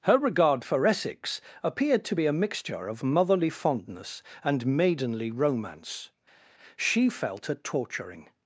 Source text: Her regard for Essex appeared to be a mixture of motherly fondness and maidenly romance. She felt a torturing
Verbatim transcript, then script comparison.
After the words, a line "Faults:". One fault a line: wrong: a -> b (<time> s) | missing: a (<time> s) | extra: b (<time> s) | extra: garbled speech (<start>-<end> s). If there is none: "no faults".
Her regard for Essex appeared to be a mixture of motherly fondness and maidenly romance. She felt a torturing
Faults:
no faults